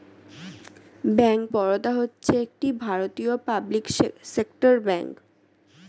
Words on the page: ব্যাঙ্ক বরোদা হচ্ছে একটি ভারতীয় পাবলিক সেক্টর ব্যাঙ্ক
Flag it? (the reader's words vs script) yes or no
no